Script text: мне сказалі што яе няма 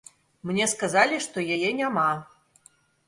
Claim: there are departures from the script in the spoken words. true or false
false